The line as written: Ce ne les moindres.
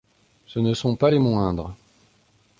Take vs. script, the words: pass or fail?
fail